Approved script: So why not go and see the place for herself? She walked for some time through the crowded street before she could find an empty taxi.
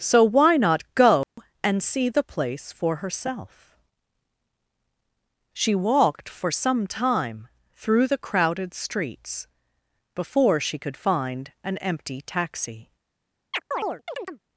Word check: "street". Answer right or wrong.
wrong